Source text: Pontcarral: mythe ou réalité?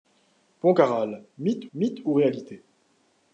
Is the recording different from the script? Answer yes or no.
yes